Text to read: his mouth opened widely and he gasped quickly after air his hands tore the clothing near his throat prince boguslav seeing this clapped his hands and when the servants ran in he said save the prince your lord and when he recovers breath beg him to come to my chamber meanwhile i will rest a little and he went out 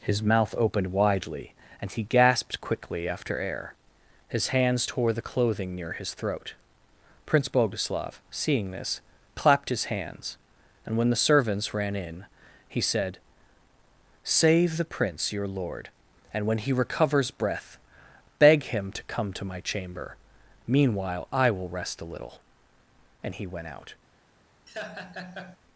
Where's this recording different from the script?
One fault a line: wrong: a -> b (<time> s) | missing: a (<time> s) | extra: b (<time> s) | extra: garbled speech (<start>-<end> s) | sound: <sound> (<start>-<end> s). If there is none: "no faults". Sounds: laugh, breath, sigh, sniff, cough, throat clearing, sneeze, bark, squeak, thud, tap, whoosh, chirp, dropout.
sound: laugh (24.7-25.6 s)